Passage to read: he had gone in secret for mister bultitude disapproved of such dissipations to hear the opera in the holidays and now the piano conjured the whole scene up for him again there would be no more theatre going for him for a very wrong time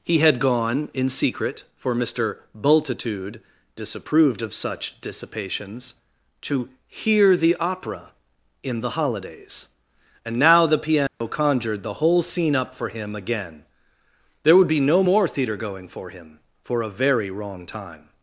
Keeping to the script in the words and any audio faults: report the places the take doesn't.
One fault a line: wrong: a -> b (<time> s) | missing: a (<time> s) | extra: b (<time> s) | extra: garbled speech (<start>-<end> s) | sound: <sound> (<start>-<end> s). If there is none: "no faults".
sound: dropout (11.1-11.2 s)